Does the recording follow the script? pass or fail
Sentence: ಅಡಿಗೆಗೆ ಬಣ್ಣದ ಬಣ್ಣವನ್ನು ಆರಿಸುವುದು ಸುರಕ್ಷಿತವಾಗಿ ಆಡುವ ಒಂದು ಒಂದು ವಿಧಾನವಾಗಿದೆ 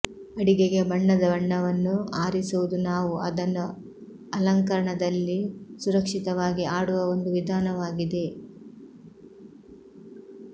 fail